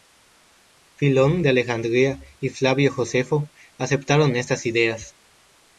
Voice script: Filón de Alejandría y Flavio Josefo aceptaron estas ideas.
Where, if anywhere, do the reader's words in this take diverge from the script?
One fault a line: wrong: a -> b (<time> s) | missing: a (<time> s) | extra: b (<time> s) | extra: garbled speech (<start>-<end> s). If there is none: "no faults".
no faults